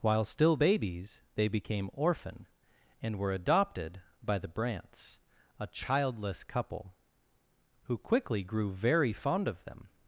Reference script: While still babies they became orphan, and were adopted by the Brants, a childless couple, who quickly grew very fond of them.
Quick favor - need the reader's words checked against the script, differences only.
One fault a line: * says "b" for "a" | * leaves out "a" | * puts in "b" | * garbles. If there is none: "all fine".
all fine